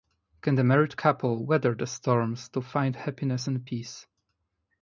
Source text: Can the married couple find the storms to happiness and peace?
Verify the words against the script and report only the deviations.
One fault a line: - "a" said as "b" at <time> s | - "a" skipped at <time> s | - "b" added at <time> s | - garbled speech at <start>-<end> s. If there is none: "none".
- "find" said as "weather" at 1.4 s
- "find" added at 2.6 s